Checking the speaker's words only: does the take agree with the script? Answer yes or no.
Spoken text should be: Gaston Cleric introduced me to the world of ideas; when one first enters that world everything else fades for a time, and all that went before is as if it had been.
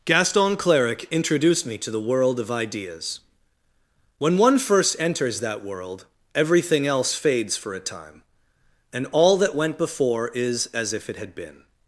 yes